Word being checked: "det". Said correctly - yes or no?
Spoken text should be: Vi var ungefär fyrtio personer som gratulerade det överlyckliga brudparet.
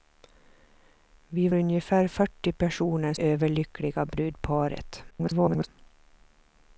no